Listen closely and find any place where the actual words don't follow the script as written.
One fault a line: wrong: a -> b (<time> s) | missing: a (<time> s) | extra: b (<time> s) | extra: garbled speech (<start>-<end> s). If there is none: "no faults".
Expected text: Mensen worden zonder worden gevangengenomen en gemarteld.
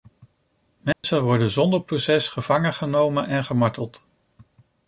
wrong: worden -> proces (1.8 s)